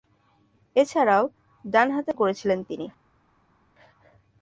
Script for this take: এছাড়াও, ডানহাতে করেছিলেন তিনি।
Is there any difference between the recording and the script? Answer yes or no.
no